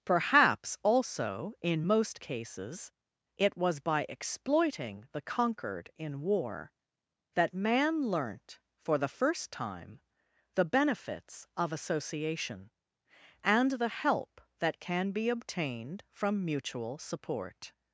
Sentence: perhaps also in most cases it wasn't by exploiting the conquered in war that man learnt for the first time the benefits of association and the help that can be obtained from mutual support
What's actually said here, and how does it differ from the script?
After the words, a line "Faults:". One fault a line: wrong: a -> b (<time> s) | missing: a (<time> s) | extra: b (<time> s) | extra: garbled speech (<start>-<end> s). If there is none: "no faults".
perhaps also in most cases it was by exploiting the conquered in war that man learnt for the first time the benefits of association and the help that can be obtained from mutual support
Faults:
wrong: wasn't -> was (3.6 s)